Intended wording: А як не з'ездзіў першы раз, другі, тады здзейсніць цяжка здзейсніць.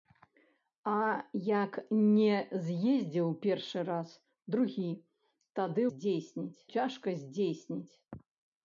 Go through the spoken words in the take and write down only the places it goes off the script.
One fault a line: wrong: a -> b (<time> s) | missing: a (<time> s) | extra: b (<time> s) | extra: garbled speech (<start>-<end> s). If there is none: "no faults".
no faults